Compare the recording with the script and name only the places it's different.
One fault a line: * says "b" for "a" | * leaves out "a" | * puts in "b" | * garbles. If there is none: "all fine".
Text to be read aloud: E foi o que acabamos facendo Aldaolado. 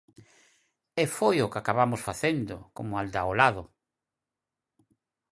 * puts in "como"